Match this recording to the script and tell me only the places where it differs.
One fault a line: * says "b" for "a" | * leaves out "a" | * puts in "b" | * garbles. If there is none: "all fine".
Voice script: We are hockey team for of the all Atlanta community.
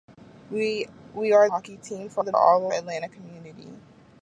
all fine